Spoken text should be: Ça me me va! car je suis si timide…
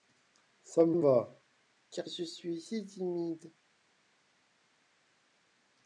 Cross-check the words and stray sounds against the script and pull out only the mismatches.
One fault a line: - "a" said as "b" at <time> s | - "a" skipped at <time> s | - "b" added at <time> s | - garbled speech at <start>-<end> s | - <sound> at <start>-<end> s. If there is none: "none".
none